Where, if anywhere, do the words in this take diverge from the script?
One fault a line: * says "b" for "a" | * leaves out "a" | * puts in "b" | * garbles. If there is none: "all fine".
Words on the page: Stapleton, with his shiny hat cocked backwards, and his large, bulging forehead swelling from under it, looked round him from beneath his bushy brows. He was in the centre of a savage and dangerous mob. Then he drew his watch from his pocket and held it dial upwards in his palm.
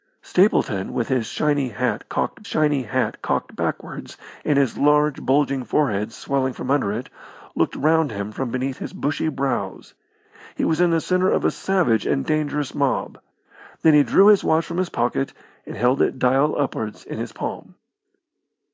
* puts in "shiny hat cocked"